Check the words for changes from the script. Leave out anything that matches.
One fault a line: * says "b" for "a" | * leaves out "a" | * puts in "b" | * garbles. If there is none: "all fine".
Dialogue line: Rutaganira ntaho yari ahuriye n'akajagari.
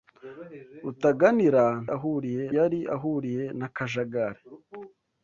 * says "ahuriye" for "ntaho"